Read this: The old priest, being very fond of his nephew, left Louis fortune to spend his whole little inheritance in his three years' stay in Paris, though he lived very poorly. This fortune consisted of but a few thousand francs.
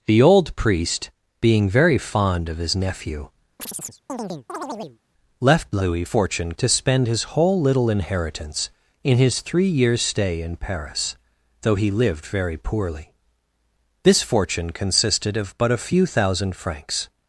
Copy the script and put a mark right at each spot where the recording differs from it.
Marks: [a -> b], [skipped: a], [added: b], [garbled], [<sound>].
The old priest, being very fond of his nephew, [chirp] left Louis fortune to spend his whole little inheritance in his three years' stay in Paris, though he lived very poorly. This fortune consisted of but a few thousand francs.